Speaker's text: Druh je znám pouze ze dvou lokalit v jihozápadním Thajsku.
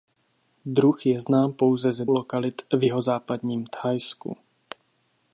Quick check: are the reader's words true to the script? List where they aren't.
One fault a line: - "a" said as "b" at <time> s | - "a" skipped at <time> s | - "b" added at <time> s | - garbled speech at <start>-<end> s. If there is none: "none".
- "dvou" skipped at 2.0 s